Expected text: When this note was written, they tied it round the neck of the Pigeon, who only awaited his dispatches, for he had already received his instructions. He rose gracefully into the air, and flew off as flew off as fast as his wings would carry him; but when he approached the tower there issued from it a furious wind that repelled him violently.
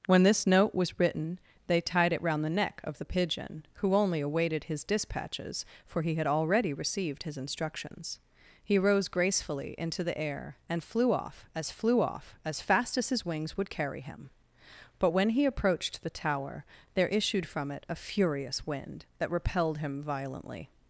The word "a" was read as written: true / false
true